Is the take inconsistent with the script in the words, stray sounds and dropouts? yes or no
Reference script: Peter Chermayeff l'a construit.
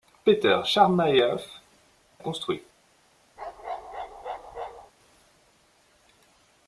yes